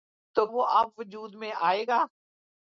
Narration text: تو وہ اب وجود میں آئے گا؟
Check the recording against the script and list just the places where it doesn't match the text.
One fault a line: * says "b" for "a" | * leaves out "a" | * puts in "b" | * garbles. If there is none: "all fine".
all fine